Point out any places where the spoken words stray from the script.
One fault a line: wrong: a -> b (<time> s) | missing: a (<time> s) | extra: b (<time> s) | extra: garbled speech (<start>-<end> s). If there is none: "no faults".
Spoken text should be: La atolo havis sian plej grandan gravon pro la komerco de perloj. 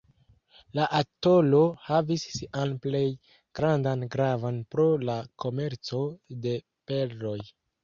no faults